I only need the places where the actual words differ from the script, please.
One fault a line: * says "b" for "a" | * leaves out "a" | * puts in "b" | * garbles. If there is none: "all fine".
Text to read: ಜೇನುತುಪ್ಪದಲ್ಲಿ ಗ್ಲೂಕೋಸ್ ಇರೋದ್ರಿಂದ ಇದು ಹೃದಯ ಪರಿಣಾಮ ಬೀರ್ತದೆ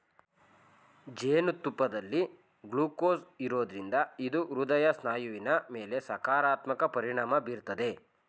* puts in "ಸ್ನಾಯುವಿನ ಮೇಲೆ ಸಕಾರಾತ್ಮಕ"